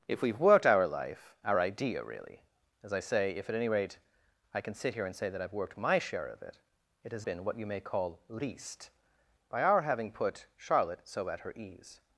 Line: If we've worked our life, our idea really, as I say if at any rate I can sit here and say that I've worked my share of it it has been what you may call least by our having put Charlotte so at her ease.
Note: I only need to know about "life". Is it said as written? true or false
true